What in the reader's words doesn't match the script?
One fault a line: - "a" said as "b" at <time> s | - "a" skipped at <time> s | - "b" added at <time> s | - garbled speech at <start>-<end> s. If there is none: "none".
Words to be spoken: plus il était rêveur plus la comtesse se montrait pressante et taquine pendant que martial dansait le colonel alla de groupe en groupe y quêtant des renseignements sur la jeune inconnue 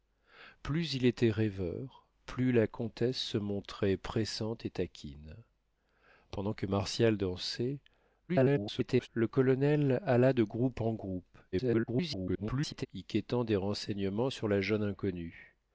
- garbled speech at 8.3-9.1 s
- garbled speech at 11.5-12.9 s